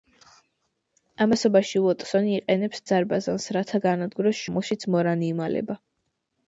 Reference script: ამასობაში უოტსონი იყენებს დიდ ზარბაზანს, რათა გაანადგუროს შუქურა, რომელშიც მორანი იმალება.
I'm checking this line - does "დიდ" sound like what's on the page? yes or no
no